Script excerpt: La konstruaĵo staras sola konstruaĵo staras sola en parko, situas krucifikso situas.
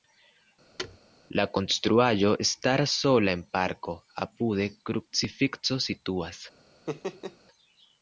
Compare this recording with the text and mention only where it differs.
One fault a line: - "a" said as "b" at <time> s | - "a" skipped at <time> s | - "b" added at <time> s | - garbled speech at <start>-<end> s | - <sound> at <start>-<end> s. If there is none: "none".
- thud at 0.8-1.0 s
- "konstruaĵo staras sola" skipped at 3.3 s
- "situas" said as "apude" at 4.3 s
- laugh at 6.9-7.4 s